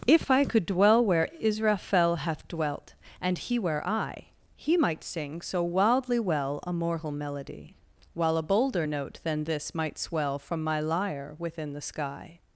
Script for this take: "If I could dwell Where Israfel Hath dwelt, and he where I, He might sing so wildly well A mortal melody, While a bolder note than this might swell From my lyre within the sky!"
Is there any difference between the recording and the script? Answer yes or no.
no